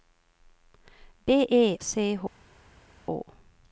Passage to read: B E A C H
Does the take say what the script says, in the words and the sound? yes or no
no